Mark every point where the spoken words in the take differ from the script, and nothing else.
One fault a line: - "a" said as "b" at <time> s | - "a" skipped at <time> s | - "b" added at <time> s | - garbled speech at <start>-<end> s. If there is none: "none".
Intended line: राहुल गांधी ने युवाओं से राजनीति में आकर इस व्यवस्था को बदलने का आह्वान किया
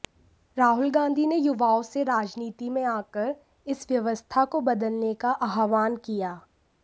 none